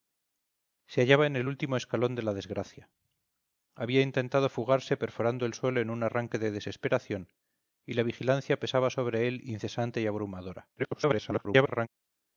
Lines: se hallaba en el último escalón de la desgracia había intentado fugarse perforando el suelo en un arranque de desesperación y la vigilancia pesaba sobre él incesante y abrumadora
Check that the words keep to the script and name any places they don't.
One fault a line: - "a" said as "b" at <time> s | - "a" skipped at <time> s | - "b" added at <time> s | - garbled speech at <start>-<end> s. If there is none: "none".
- garbled speech at 10.8-11.9 s